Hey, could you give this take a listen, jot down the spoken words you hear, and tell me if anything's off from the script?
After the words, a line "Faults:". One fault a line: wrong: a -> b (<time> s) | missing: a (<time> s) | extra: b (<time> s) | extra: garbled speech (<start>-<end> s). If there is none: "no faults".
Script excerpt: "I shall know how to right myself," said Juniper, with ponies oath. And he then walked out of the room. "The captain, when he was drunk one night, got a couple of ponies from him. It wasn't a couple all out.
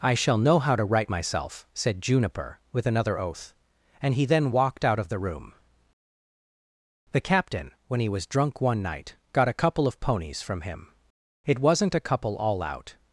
"I shall know how to right myself," said Juniper, with another oath. And he then walked out of the room. "The captain, when he was drunk one night, got a couple of ponies from him. It wasn't a couple all out.
Faults:
wrong: ponies -> another (2.9 s)